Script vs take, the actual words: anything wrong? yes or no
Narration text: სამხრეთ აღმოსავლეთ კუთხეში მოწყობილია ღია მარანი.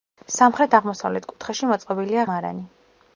yes